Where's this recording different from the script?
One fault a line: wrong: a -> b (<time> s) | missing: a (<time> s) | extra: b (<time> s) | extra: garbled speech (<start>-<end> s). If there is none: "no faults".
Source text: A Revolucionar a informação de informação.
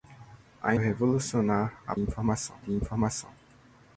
no faults